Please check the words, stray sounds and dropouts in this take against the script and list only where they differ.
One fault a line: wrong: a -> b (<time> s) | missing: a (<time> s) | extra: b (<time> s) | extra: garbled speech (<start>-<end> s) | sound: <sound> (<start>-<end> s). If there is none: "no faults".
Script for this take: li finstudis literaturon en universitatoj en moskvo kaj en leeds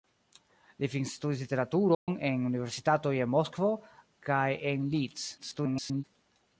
sound: dropout (1.9-2.1 s)
extra: garbled speech (5.4-6.0 s)